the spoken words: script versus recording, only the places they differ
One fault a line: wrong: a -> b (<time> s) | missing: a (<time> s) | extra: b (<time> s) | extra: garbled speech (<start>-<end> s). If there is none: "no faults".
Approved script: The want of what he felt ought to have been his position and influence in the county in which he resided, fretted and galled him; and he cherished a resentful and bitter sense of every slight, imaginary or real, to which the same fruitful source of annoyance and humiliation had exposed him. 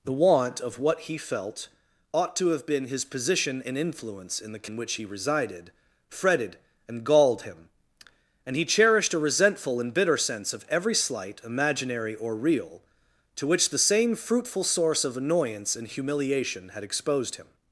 missing: county (4.7 s)